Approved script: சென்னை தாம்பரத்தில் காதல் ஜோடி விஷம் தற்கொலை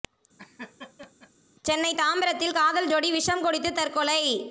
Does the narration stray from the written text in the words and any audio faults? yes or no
yes